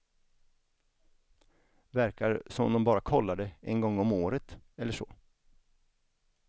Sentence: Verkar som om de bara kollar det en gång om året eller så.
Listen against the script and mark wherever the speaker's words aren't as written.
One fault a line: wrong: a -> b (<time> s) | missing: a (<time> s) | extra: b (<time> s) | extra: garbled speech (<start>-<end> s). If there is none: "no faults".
no faults